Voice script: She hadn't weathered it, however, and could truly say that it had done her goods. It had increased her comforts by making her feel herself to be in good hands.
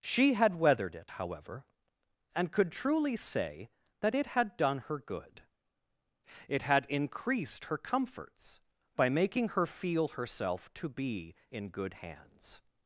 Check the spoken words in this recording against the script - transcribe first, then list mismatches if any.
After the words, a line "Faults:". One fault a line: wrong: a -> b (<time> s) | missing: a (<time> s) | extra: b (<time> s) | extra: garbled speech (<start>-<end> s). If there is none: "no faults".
She had weathered it, however, and could truly say that it had done her good. It had increased her comforts by making her feel herself to be in good hands.
Faults:
wrong: hadn't -> had (0.3 s)
wrong: goods -> good (5.0 s)